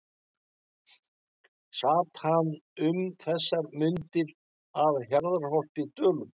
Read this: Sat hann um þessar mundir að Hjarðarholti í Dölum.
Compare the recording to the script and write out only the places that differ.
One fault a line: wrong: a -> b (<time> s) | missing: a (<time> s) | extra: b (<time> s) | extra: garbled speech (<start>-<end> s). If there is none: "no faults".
no faults